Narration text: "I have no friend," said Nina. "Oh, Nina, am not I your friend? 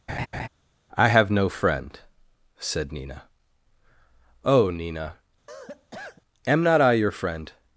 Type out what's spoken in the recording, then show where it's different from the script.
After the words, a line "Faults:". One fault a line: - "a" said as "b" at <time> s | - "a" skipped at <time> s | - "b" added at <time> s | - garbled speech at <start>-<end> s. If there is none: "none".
"I have no friend," said Nina. "Oh, Nina, am not I your friend?
Faults:
none